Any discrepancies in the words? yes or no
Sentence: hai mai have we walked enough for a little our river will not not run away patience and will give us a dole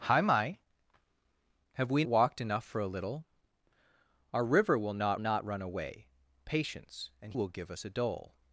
no